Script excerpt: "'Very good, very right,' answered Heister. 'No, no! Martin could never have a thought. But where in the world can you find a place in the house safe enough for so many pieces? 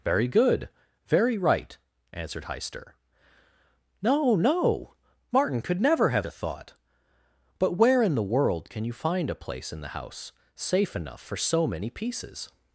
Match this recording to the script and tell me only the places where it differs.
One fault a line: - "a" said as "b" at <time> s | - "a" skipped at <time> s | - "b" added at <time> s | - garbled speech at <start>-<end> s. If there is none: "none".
none